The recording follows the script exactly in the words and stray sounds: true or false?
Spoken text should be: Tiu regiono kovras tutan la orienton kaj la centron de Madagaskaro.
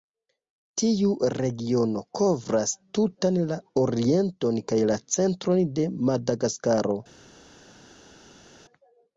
true